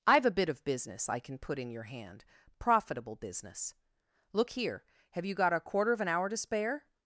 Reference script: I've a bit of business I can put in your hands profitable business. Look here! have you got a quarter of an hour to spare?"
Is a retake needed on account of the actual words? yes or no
yes